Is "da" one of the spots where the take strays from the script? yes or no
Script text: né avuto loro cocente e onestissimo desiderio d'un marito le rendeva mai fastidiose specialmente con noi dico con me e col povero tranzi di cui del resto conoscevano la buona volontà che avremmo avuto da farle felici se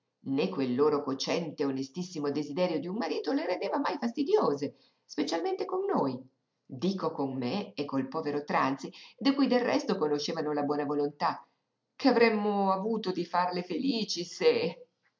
yes